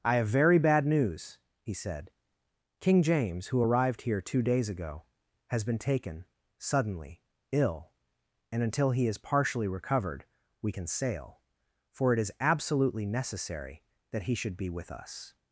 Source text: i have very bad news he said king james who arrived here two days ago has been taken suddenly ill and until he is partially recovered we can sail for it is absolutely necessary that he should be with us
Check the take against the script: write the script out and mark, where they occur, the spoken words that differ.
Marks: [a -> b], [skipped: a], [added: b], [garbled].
i have very bad news he said king james who arrived here two days ago has been taken suddenly ill and until he is partially recovered we can sail for it is absolutely necessary that he should be with us